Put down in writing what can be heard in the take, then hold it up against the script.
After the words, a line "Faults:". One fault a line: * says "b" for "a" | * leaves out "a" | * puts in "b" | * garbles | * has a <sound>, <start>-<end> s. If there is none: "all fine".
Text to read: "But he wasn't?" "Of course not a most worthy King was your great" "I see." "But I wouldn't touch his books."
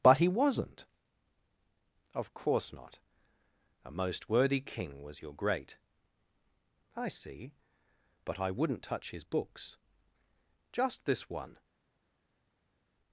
"But he wasn't?" "Of course not a most worthy King was your great" "I see." "But I wouldn't touch his books." "Just this one
Faults:
* puts in "Just this one"